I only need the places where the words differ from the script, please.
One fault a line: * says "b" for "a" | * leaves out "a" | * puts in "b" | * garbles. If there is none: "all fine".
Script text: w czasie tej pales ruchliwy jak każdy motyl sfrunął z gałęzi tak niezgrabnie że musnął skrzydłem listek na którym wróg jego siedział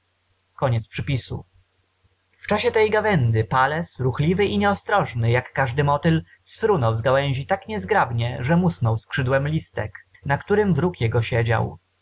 * puts in "gawędy"
* puts in "i nieostrożny"